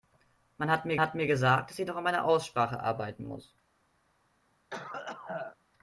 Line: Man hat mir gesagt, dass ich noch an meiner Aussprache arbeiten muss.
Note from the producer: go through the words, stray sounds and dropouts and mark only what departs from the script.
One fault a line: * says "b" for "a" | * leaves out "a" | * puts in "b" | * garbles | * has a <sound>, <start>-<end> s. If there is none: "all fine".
* puts in "hat mir"
* has a cough, 4.7-5.6 s